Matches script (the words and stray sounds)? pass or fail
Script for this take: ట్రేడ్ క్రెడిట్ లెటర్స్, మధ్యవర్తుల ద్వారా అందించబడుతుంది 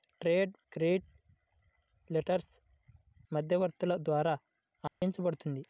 fail